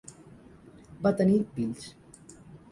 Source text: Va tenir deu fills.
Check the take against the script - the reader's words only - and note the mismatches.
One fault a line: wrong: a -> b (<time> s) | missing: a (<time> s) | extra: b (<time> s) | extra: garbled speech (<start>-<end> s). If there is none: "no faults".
missing: deu (1.4 s)